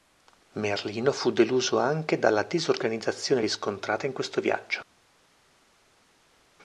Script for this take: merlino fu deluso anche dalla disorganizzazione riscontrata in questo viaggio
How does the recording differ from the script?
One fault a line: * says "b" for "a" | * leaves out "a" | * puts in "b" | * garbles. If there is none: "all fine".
all fine